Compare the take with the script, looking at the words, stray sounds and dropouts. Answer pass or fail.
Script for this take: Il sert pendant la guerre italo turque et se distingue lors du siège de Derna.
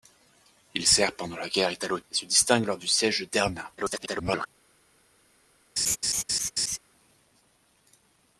fail